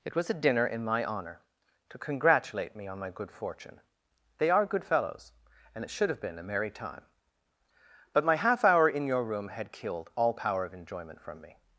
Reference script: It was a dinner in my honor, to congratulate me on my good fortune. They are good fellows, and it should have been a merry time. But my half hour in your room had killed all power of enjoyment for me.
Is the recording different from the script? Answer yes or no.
yes